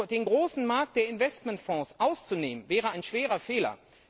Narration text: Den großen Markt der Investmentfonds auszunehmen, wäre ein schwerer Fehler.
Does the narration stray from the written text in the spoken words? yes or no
no